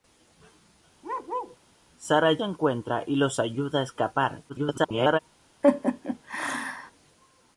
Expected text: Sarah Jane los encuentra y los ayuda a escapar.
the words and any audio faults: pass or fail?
fail